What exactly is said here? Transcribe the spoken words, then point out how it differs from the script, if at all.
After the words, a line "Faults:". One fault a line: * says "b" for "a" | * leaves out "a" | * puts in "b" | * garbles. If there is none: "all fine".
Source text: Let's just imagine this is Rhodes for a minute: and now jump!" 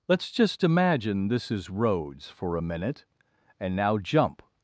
Let's just imagine this is Rhodes for a minute: and now jump!"
Faults:
all fine